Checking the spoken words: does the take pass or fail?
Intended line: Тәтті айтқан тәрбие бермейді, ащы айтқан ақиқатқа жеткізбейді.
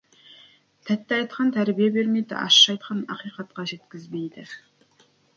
pass